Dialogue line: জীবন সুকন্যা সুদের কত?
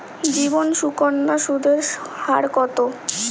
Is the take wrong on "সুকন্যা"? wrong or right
right